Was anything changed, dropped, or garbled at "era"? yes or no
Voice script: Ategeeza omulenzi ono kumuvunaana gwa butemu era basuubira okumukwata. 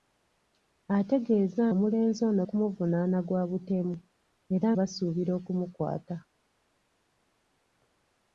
no